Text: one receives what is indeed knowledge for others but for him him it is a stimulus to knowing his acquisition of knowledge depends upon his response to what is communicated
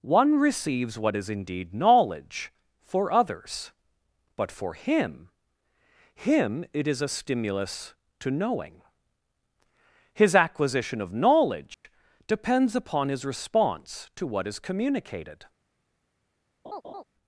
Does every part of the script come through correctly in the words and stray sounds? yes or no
no